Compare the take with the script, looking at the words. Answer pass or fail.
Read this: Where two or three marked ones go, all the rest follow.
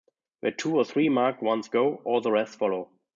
pass